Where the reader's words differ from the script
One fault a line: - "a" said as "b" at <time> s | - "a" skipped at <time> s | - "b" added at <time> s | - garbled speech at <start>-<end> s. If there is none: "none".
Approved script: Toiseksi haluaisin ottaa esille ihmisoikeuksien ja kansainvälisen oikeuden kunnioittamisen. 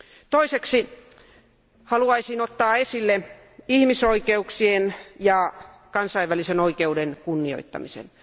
none